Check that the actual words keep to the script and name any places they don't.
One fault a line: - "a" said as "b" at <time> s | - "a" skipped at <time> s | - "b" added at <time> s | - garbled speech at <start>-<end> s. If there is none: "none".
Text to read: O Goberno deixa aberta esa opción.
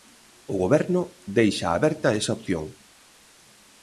none